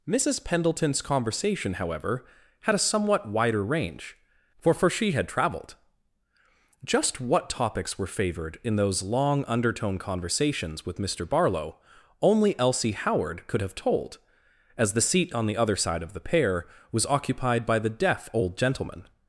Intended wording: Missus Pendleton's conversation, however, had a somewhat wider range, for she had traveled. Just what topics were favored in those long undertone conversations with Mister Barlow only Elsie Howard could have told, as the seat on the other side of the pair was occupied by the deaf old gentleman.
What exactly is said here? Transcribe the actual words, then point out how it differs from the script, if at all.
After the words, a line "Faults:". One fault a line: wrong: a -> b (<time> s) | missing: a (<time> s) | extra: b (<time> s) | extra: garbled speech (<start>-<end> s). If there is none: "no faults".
Missus Pendleton's conversation, however, had a somewhat wider range, for for she had traveled. Just what topics were favored in those long undertone conversations with Mister Barlow only Elsie Howard could have told, as the seat on the other side of the pair was occupied by the deaf old gentleman.
Faults:
extra: for (4.7 s)